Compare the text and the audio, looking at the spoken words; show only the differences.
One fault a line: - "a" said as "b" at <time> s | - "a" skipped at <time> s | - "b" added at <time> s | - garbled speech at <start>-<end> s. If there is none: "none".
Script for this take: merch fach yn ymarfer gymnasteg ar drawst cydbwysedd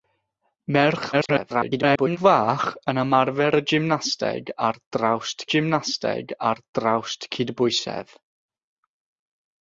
- garbled speech at 1.1-2.2 s
- "gymnasteg ar drawst" added at 5.5 s